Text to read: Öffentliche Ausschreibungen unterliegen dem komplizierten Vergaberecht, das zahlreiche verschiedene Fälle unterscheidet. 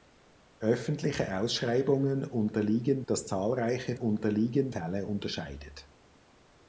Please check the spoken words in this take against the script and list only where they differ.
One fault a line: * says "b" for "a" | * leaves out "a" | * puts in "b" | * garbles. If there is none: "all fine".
* leaves out "dem komplizierten Vergaberecht"
* says "unterliegen" for "verschiedene"